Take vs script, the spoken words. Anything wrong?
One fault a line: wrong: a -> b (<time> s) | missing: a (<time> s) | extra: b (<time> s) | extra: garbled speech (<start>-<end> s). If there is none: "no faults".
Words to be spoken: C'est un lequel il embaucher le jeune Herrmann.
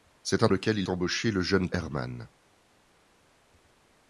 no faults